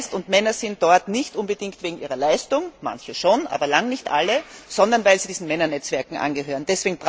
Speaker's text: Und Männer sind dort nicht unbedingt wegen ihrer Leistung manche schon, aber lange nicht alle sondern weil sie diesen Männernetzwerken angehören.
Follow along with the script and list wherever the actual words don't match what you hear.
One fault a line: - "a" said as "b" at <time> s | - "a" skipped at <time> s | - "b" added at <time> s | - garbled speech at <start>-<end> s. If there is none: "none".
none